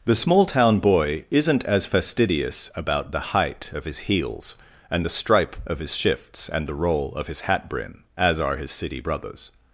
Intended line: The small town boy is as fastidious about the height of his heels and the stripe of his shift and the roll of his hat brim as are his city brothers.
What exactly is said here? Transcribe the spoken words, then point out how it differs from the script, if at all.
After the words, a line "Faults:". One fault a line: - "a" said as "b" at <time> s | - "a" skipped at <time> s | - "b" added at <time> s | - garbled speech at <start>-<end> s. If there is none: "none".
The small town boy isn't as fastidious about the height of his heels and the stripe of his shifts and the roll of his hat brim as are his city brothers.
Faults:
- "is" said as "isn't" at 1.3 s
- "shift" said as "shifts" at 6.0 s